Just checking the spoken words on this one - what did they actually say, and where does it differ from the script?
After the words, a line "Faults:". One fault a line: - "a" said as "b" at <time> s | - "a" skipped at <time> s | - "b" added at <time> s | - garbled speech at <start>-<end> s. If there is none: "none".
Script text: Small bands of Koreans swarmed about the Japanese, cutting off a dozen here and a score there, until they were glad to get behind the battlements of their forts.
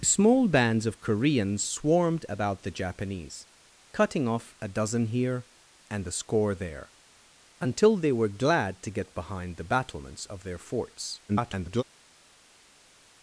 Small bands of Koreans swarmed about the Japanese, cutting off a dozen here and a score there, until they were glad to get behind the battlements of their forts. [garbled]
Faults:
- garbled speech at 11.3-11.8 s